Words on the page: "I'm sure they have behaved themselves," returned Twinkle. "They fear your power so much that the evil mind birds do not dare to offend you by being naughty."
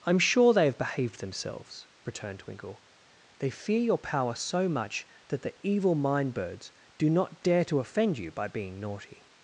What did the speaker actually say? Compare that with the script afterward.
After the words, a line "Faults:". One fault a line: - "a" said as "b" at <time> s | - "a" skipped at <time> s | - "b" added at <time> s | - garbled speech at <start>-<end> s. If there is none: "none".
"I'm sure they have behaved themselves," returned Twinkle. "They fear your power so much that the evil mind birds do not dare to offend you by being naughty."
Faults:
none